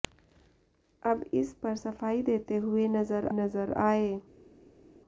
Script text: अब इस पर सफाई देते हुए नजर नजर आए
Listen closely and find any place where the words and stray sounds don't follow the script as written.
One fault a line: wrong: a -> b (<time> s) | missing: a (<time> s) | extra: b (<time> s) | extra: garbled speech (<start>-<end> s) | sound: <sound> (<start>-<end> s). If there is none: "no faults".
no faults